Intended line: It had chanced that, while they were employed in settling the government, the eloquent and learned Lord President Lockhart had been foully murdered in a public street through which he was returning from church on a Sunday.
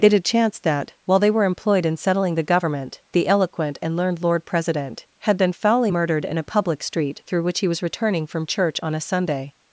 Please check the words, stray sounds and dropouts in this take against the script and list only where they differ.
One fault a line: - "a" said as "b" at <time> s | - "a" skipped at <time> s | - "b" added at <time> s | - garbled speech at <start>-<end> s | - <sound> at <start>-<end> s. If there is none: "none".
- "Lockhart" skipped at 5.0 s